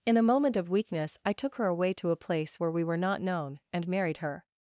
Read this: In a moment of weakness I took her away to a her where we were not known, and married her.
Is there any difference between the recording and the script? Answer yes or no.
yes